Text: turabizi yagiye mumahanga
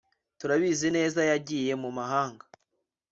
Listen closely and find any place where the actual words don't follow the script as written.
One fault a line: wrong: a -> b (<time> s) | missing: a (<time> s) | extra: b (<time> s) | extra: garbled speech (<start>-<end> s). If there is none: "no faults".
extra: neza (1.0 s)